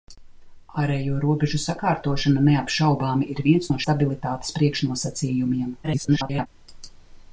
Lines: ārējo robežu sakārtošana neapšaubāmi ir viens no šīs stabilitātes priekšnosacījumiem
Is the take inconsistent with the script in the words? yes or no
yes